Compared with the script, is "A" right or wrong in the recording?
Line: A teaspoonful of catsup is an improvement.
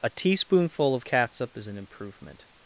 right